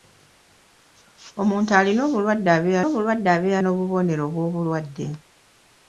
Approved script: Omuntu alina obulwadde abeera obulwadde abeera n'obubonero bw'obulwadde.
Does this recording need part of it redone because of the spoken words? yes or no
no